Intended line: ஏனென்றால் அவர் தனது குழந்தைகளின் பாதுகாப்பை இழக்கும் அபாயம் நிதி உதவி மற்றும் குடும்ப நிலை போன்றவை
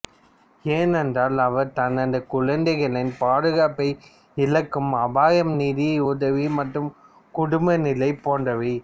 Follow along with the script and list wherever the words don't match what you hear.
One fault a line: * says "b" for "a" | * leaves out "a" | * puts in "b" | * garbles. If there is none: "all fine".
all fine